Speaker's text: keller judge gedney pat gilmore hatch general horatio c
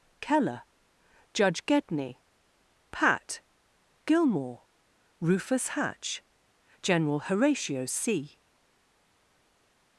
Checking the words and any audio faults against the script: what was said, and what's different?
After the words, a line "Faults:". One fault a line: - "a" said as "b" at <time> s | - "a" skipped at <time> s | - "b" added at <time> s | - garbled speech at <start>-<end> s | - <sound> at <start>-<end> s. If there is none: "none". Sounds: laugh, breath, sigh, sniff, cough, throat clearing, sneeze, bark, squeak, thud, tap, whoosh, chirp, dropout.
keller judge gedney pat gilmore rufus hatch general horatio c
Faults:
- "rufus" added at 5.2 s